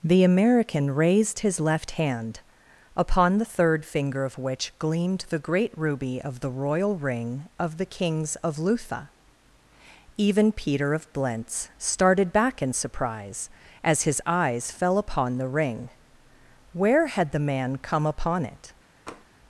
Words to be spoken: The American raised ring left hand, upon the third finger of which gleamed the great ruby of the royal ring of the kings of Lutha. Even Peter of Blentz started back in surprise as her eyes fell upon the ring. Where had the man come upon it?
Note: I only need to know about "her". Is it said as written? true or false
false